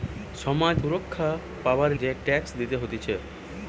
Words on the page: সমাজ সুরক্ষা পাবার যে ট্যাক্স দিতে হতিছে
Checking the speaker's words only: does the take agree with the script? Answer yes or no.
yes